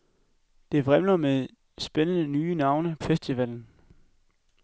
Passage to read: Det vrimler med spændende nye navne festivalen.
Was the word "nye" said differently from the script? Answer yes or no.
no